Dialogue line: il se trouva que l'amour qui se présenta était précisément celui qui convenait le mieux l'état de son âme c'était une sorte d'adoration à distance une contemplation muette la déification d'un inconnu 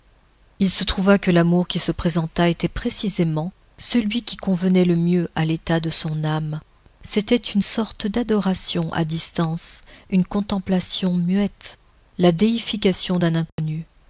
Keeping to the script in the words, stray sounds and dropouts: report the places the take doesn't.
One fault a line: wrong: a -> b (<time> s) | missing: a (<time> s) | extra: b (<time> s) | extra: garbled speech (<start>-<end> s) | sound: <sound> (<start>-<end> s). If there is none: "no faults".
extra: à (5.3 s)
sound: dropout (13.5-13.6 s)